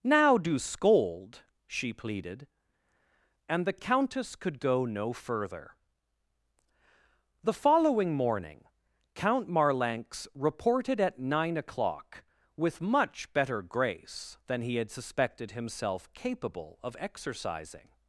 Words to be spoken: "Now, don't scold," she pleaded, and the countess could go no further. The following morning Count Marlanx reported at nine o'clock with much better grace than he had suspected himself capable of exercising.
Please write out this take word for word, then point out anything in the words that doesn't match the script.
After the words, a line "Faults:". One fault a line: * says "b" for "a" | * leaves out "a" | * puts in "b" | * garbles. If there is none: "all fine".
"Now, do scold," she pleaded, and the countess could go no further. The following morning Count Marlanx reported at nine o'clock with much better grace than he had suspected himself capable of exercising.
Faults:
* says "do" for "don't"